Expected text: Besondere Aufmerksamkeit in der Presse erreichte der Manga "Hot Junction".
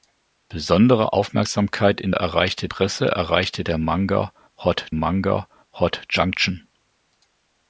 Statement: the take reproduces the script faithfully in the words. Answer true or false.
false